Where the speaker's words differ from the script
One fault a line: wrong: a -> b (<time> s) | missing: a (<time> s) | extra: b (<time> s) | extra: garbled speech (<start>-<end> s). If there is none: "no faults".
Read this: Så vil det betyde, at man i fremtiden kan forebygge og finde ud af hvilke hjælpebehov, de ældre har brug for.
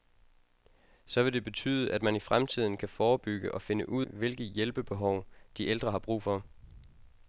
missing: af (4.0 s)